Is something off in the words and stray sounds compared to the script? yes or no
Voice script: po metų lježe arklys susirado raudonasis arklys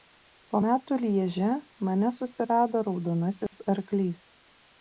yes